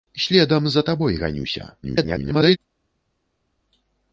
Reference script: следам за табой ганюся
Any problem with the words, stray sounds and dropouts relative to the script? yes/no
yes